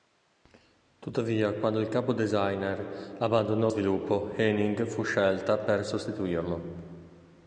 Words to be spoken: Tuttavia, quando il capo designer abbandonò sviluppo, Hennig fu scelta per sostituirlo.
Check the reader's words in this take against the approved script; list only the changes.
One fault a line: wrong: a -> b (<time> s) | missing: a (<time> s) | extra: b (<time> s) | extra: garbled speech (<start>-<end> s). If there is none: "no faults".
no faults